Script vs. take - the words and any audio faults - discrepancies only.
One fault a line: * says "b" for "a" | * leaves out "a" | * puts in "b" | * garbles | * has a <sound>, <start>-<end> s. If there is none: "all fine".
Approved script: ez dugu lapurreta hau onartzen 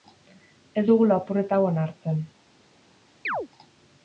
* has a chirp, 3.2-3.5 s